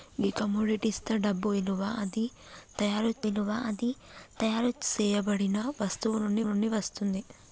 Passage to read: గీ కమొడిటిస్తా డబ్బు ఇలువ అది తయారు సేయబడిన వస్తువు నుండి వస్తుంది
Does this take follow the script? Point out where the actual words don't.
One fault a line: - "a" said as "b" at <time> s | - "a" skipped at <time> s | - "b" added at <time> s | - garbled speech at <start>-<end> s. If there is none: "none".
- "ఇలువ అది తయారు" added at 3.2 s
- "నుండి" added at 6.4 s